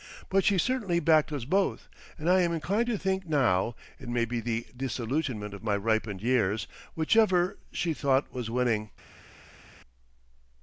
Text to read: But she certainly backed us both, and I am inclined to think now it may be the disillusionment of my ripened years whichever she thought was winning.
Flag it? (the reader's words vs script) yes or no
no